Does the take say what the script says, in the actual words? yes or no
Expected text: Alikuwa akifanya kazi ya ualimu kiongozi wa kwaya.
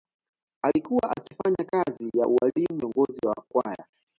yes